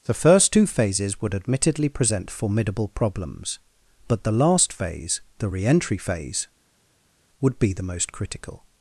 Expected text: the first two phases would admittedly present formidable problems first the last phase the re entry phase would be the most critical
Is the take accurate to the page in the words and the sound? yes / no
no